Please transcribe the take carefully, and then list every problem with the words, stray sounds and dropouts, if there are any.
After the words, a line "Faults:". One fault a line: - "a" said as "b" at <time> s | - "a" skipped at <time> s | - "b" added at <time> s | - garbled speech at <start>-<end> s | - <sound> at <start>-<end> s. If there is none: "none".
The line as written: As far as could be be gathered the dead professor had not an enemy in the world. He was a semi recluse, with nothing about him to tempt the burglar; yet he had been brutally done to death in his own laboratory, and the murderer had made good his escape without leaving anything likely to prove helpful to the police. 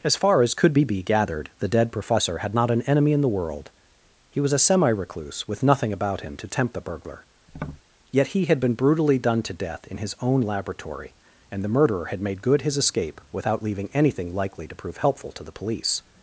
As far as could be be gathered the dead professor had not an enemy in the world. He was a semi recluse, with nothing about him to tempt the burglar; yet he had been brutally done to death in his own laboratory, and the murderer had made good his escape without leaving anything likely to prove helpful to the police.
Faults:
- tap at 7.5-7.8 s